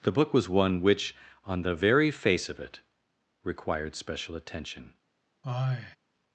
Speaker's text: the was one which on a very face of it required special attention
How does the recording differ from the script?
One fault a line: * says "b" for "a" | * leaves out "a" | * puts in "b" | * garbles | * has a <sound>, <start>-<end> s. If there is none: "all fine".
* puts in "book"
* says "the" for "a"
* has a sigh, 5.4-6.0 s